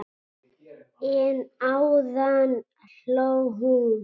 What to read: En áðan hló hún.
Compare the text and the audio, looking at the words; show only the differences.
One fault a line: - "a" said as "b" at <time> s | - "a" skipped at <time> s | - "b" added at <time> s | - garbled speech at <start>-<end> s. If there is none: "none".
none